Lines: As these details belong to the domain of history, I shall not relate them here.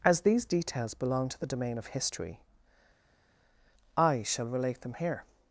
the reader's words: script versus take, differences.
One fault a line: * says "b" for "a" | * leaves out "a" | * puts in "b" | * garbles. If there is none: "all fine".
* leaves out "not"